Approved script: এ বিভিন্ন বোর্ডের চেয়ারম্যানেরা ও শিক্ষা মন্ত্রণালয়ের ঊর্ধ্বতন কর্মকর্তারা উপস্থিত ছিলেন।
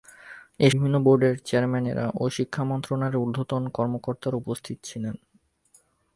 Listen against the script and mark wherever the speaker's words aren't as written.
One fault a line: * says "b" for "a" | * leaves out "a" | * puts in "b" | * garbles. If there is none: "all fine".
all fine